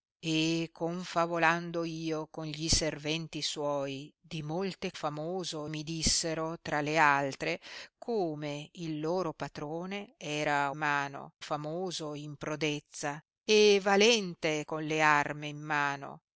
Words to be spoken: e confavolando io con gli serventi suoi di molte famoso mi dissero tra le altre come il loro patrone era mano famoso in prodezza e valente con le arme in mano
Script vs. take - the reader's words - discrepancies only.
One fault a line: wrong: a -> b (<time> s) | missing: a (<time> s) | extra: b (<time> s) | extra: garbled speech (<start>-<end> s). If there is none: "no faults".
no faults